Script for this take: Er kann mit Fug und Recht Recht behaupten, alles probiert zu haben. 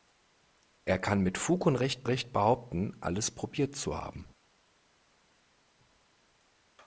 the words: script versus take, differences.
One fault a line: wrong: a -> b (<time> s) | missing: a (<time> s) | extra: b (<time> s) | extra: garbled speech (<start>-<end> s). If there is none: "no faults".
no faults